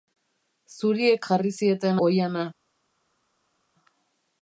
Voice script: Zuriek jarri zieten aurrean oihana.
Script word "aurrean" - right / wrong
wrong